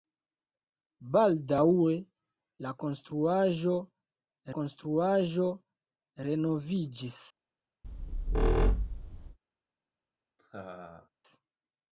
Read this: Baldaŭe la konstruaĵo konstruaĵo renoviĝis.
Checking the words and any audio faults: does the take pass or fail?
fail